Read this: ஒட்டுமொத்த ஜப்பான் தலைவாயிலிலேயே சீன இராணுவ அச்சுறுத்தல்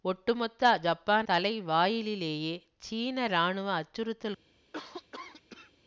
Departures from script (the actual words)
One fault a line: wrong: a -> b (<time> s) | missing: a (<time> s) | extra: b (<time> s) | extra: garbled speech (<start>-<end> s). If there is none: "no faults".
no faults